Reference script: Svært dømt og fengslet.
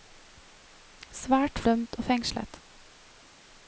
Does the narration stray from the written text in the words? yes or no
no